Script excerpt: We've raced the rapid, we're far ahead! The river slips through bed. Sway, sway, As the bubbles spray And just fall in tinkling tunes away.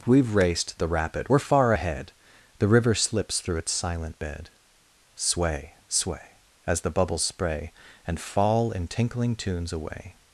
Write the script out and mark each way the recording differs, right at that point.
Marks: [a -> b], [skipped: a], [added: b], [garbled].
We've raced the rapid, we're far ahead! The river slips through [added: its silent] bed. Sway, sway, As the bubbles spray And [skipped: just] fall in tinkling tunes away.